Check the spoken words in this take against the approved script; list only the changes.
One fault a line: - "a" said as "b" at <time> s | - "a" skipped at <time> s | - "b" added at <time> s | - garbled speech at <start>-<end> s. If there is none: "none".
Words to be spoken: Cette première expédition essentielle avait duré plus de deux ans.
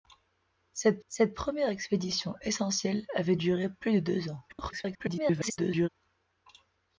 - "cette" added at 1.1 s
- garbled speech at 4.5-5.9 s